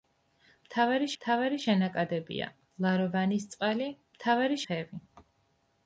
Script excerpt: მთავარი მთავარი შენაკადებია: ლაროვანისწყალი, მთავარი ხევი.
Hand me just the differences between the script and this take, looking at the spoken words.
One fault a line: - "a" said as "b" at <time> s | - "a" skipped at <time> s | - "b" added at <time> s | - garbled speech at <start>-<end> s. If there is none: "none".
none